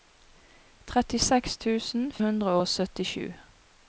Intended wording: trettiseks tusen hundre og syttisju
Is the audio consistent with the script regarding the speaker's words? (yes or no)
yes